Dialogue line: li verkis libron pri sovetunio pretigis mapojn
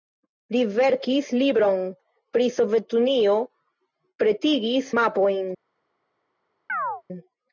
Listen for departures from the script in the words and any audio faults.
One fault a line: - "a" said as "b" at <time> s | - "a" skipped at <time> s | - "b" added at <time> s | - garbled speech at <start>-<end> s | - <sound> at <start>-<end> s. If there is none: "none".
- chirp at 6.7-7.0 s